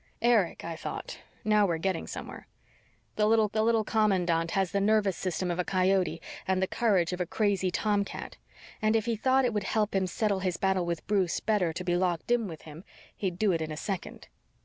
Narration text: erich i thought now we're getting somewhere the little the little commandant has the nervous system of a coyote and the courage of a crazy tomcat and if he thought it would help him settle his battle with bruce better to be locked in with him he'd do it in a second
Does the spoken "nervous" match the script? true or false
true